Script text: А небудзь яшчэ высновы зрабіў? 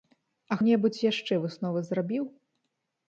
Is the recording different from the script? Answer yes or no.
no